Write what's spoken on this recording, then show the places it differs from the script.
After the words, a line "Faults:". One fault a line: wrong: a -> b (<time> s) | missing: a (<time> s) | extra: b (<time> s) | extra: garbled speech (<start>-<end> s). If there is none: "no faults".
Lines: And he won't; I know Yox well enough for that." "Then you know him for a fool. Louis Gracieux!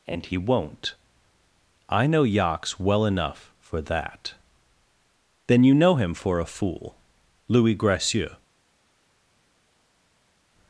And he won't; I know Yox well enough for that." "Then you know him for a fool. Louis Gracieux!
Faults:
no faults